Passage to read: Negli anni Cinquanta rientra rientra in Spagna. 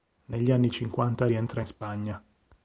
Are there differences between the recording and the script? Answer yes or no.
yes